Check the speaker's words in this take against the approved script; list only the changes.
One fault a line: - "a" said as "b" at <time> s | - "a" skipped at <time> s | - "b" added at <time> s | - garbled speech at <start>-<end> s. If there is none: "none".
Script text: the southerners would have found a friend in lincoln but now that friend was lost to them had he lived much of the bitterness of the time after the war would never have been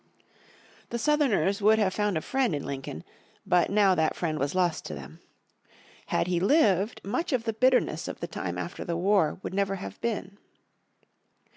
none